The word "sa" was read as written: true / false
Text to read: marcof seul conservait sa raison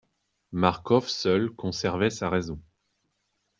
true